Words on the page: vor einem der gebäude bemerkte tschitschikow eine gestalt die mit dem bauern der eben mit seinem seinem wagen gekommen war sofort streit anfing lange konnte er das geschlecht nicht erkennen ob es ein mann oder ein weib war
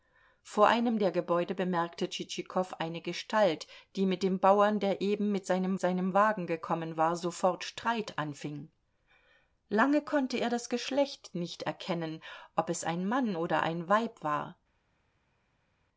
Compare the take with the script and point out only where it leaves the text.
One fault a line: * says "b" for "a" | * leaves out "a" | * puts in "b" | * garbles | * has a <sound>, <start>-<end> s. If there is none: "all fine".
all fine